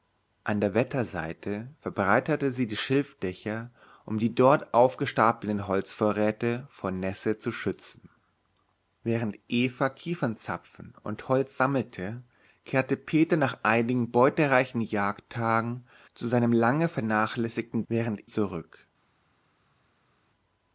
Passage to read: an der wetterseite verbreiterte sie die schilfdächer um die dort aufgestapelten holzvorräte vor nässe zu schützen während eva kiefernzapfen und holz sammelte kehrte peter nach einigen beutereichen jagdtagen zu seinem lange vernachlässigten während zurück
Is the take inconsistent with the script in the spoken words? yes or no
no